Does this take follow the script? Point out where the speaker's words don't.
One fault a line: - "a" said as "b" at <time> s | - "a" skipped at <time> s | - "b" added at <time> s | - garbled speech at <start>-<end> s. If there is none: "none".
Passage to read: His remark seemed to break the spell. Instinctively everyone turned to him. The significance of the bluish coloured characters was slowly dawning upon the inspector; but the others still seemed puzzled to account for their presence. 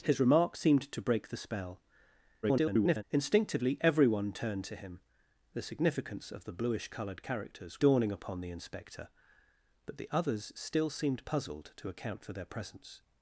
- garbled speech at 2.4-3.0 s
- "was slowly" skipped at 7.8 s